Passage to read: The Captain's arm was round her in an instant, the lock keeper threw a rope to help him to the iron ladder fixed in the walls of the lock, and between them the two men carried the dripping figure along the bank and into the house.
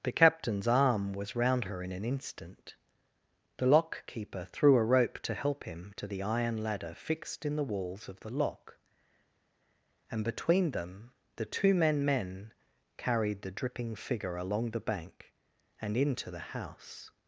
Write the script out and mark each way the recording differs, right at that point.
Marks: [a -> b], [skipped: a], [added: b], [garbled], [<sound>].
The Captain's arm was round her in an instant, the lock keeper threw a rope to help him to the iron ladder fixed in the walls of the lock, and between them the two men [added: men] carried the dripping figure along the bank and into the house.